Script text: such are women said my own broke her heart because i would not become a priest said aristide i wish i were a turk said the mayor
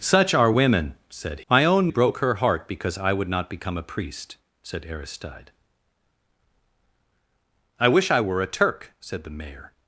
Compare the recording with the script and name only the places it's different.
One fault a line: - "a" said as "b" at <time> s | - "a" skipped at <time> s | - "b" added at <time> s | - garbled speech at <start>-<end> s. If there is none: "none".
none